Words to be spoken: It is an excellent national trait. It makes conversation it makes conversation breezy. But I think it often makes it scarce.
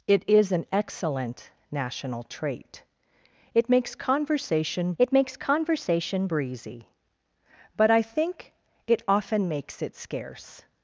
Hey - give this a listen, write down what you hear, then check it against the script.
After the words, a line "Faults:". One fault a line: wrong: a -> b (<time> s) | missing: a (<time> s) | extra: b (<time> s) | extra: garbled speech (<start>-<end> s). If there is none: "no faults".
It is an excellent national trait. It makes conversation it makes conversation breezy. But I think it often makes it scarce.
Faults:
no faults